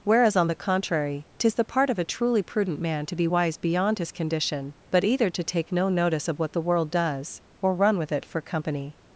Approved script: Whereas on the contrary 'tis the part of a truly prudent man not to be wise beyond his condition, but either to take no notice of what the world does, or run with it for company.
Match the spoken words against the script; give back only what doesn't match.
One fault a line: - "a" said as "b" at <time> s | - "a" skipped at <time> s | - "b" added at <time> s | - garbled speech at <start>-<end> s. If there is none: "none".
- "not" skipped at 3.0 s